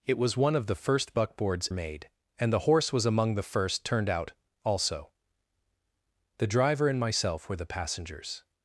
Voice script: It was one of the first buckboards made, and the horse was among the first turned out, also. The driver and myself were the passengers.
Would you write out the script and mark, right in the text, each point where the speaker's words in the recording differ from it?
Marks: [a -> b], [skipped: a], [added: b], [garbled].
It was one of the first buckboards made, and the horse was among the first turned out, also. The driver and myself were the passengers.